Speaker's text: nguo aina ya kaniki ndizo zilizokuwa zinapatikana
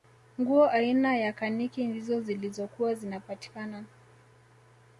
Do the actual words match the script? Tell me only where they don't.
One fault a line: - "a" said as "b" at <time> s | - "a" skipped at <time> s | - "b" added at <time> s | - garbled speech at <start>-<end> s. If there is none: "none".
none